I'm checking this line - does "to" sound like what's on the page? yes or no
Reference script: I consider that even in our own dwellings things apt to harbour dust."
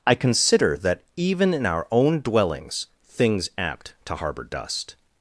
yes